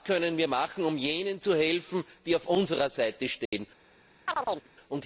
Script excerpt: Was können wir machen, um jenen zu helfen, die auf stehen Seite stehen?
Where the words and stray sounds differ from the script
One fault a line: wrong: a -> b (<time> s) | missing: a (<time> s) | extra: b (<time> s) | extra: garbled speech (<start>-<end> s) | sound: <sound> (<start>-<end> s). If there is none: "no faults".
wrong: stehen -> unserer (2.5 s)
sound: dropout (3.5-3.5 s)
sound: chirp (4.3-4.7 s)